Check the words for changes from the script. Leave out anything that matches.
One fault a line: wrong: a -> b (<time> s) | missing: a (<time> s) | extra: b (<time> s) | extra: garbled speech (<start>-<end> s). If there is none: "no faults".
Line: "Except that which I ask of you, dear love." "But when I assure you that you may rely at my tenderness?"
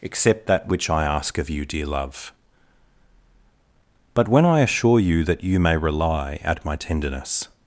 no faults